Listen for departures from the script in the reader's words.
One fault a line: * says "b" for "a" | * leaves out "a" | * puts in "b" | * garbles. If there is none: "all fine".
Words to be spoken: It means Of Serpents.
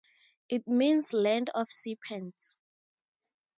* puts in "Land"